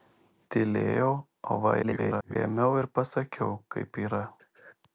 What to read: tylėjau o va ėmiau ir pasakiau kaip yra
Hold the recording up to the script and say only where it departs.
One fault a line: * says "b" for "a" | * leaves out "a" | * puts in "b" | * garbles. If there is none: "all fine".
* garbles